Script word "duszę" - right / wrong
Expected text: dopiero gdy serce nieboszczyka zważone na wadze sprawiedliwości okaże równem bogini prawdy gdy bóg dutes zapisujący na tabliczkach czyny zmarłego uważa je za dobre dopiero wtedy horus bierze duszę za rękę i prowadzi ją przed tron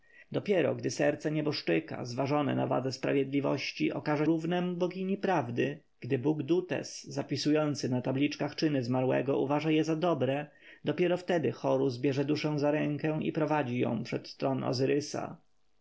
right